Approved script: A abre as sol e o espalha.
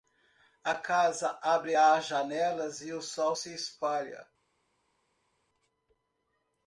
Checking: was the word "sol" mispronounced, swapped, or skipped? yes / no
yes